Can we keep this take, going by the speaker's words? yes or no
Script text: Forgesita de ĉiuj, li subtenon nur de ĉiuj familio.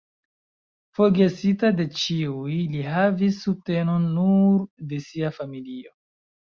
no